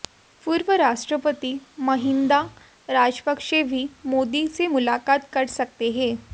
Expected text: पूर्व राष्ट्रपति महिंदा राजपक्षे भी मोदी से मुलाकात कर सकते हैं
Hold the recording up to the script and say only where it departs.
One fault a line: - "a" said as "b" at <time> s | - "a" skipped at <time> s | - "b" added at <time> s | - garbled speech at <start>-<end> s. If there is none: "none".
none